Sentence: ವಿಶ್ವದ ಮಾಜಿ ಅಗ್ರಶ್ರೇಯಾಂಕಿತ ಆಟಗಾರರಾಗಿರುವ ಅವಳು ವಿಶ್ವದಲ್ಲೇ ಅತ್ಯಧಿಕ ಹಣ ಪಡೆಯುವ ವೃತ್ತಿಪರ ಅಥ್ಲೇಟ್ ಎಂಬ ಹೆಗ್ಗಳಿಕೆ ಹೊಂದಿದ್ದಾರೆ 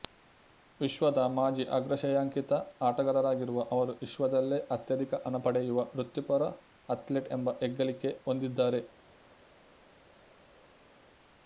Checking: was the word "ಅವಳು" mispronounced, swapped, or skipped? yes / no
yes